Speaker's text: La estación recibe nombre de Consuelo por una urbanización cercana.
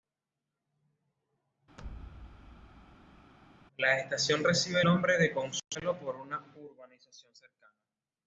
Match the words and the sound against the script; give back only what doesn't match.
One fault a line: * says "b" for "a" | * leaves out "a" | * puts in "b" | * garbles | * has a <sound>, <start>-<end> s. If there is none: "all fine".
* has a thud, 1.8-3.3 s